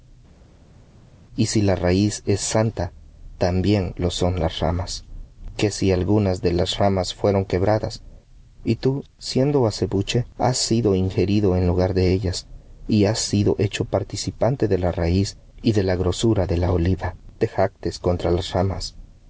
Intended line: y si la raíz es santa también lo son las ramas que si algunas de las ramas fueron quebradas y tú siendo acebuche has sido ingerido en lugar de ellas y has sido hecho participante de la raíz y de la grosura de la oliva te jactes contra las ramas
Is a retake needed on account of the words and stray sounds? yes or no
no